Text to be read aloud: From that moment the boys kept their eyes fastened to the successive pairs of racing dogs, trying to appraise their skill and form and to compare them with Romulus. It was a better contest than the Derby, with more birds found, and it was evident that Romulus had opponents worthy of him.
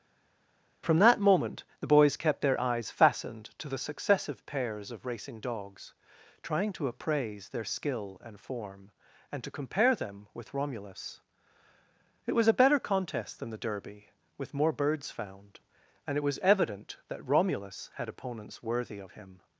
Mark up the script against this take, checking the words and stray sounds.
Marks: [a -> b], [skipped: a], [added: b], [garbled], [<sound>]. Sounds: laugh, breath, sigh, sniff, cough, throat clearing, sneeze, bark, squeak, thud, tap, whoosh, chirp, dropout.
From that moment the boys kept their eyes fastened to the successive pairs of racing dogs, trying to appraise their skill and form and to compare them with Romulus. It was a better contest than the Derby, with more birds found, and it was evident that Romulus had opponents worthy of him.